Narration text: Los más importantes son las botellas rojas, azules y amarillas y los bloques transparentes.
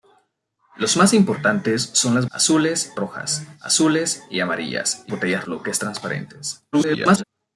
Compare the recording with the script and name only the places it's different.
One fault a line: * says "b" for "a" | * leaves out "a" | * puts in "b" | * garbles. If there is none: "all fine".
* says "azules" for "botellas"
* says "botellas" for "los"
* garbles